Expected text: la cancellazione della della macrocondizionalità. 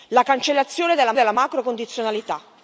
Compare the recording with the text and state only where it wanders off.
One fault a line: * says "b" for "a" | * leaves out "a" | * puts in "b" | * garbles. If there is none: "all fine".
all fine